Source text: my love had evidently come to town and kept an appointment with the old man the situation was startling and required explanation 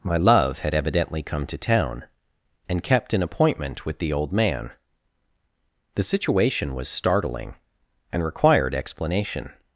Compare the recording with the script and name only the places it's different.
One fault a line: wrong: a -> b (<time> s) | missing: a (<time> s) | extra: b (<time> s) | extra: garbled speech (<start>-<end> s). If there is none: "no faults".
no faults